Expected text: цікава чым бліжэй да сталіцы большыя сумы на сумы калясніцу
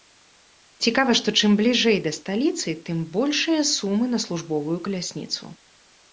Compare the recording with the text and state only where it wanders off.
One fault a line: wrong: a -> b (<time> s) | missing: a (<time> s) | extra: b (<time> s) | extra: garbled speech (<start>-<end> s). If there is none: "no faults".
extra: што (1.2 s)
extra: тым (2.9 s)
wrong: сумы -> службовую (4.3 s)